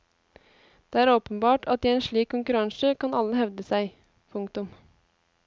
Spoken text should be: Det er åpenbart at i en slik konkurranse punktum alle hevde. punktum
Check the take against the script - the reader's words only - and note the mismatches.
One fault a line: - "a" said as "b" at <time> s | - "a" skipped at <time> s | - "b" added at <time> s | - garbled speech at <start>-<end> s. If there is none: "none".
- "punktum" said as "kan" at 3.0 s
- "seg" added at 3.7 s